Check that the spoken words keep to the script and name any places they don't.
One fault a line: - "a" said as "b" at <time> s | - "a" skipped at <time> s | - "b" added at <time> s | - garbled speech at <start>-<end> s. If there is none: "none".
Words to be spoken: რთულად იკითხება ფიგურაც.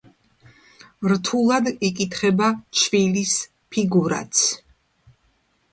- "ჩვილის" added at 2.8 s